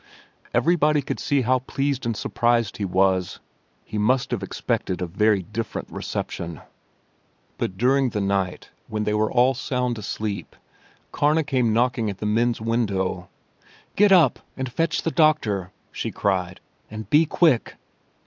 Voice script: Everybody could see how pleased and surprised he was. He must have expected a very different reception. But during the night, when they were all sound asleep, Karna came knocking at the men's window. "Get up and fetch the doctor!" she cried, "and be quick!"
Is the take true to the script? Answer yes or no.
yes